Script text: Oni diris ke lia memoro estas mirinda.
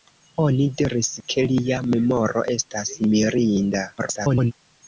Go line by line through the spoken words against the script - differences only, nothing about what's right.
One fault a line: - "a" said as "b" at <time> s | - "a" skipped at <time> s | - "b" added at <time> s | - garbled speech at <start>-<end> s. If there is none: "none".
- garbled speech at 4.0-4.5 s